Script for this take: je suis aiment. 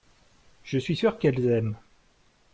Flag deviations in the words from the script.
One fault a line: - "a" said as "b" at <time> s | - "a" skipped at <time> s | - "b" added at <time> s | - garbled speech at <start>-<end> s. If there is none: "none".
- "sûr qu'elles" added at 0.9 s